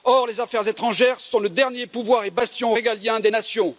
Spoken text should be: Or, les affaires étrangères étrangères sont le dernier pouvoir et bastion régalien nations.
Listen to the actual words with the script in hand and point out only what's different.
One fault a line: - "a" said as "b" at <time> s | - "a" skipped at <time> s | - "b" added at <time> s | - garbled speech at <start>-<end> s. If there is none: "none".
- "étrangères" skipped at 1.2 s
- "des" added at 3.2 s